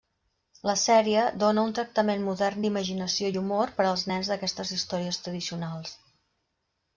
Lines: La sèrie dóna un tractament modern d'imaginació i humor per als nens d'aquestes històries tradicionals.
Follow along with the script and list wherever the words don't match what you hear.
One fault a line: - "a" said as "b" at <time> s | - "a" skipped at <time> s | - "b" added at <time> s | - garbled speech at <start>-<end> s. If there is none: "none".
none